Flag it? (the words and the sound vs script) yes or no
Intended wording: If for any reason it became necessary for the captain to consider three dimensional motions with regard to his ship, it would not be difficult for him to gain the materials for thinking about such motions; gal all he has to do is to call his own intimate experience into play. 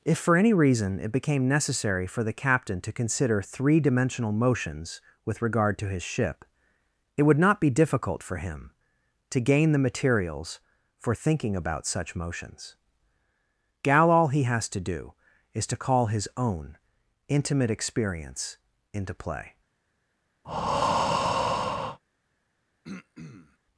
yes